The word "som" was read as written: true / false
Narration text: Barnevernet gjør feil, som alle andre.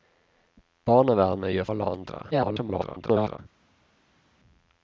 false